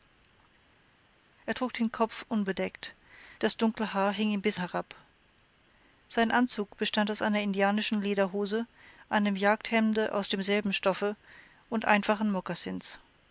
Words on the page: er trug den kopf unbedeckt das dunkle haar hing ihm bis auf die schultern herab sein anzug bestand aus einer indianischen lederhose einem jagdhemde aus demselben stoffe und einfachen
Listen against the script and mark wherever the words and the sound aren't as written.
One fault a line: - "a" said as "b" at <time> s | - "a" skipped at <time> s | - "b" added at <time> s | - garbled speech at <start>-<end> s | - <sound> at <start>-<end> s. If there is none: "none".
- "auf die schultern" skipped at 4.6 s